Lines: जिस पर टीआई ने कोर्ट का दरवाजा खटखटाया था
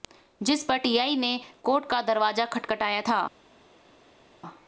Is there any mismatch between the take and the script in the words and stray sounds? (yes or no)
no